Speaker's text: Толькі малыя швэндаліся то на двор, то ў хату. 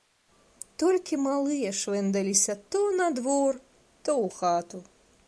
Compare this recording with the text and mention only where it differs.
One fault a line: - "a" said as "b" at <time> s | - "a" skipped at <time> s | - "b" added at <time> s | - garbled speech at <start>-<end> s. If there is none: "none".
none